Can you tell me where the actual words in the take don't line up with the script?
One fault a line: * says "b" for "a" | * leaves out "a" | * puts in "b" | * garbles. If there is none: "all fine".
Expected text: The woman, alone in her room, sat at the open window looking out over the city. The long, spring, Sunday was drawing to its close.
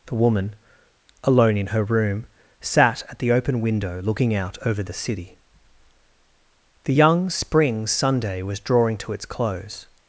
* says "young" for "long"